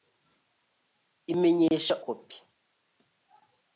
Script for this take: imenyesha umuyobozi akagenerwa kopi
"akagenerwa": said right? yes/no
no